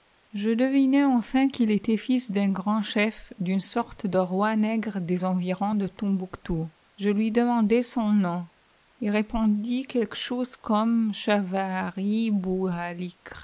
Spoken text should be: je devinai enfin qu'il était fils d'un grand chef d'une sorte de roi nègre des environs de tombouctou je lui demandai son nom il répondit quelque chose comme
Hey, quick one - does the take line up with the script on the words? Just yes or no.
yes